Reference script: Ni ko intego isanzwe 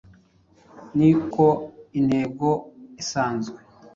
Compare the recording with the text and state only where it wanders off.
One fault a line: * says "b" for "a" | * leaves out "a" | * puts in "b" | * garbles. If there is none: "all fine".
all fine